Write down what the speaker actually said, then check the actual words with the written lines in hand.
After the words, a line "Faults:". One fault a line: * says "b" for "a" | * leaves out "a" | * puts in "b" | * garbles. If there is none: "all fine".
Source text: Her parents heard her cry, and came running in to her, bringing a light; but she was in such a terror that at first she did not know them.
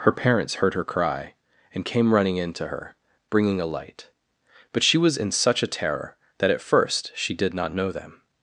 Her parents heard her cry, and came running in to her, bringing a light; but she was in such a terror that at first she did not know them.
Faults:
all fine